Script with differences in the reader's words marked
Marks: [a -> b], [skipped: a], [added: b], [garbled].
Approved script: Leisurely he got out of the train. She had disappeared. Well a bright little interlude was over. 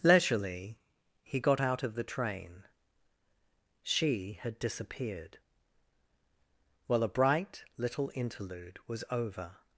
Leisurely he got out of the train. She had disappeared. Well a bright little interlude was over.